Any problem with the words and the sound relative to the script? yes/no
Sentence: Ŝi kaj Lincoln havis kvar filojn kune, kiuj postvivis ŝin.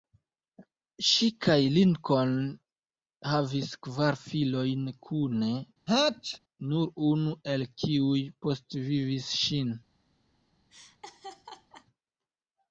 yes